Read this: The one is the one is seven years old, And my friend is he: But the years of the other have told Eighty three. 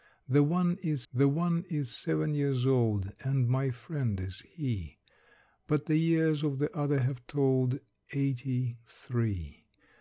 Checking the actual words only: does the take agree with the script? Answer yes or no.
yes